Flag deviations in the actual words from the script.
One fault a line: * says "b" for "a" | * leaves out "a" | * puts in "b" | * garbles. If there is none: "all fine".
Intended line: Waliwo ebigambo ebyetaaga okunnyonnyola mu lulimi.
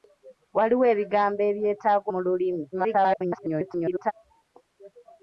* leaves out "okunnyonnyola"
* garbles